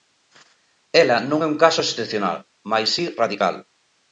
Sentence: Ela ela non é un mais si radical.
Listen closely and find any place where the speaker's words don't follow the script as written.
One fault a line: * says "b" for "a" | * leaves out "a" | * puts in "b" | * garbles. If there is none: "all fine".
* leaves out "ela"
* puts in "caso excepcional"